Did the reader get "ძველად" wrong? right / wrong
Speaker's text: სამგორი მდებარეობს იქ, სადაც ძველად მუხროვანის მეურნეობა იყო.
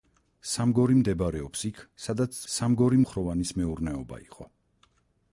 wrong